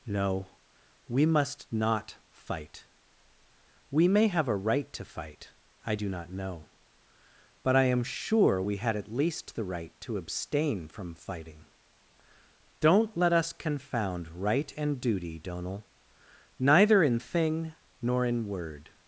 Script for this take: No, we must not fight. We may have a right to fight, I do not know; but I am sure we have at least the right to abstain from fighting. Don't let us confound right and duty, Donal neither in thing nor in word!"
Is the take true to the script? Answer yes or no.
no